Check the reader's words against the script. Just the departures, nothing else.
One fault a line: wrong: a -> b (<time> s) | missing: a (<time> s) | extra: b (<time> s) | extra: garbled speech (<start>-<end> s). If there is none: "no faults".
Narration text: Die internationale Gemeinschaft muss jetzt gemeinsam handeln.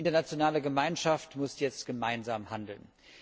no faults